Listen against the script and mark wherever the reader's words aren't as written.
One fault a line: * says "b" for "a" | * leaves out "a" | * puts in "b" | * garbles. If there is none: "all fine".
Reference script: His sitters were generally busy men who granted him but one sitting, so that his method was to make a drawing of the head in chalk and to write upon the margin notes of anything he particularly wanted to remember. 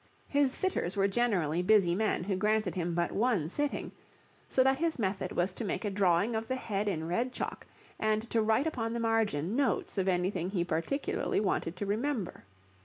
* puts in "red"